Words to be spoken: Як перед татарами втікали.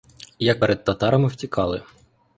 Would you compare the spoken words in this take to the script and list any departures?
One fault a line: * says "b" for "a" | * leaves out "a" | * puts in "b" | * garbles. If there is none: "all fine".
all fine